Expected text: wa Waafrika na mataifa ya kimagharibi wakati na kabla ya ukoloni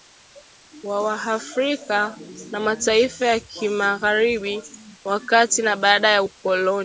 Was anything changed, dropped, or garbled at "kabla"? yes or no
yes